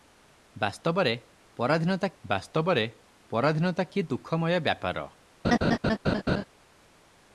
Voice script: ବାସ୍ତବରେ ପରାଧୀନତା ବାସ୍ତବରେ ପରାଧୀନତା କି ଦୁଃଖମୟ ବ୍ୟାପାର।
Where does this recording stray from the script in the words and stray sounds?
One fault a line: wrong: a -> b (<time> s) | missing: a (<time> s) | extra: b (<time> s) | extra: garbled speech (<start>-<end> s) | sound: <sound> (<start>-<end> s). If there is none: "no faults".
sound: laugh (5.4-6.4 s)